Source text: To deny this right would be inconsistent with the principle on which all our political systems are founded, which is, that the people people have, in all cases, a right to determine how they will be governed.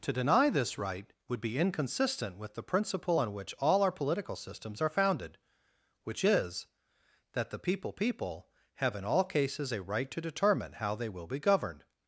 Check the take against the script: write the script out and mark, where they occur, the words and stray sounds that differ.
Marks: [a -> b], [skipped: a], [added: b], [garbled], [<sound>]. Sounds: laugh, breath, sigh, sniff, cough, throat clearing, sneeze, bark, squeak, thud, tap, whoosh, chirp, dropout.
To deny this right would be inconsistent with the principle on which all our political systems are founded, which is, that the people people have, in all cases, a right to determine how they will be governed.